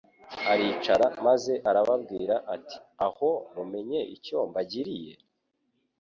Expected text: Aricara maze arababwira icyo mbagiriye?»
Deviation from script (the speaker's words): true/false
true